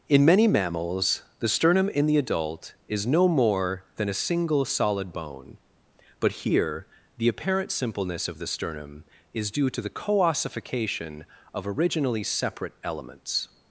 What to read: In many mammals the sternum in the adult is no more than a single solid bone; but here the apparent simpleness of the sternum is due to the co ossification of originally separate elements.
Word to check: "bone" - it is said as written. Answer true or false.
true